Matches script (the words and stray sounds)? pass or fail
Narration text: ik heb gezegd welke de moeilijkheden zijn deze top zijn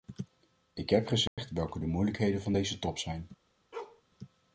fail